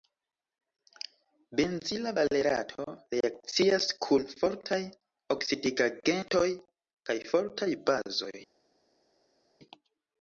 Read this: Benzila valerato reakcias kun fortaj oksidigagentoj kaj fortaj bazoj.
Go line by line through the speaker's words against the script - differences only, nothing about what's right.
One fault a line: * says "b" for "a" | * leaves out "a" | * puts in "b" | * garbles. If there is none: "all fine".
all fine